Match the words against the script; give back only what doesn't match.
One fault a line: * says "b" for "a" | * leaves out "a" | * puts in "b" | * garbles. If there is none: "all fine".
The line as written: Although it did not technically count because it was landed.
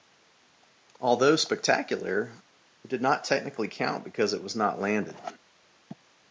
* puts in "spectacular"
* puts in "not"